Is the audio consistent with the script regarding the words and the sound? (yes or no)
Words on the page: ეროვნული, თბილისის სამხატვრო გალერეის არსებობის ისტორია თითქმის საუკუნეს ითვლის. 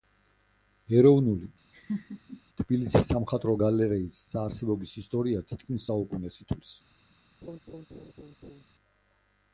no